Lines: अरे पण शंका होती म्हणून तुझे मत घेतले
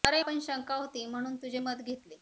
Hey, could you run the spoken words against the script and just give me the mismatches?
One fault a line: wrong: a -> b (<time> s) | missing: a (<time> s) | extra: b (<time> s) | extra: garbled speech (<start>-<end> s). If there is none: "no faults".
no faults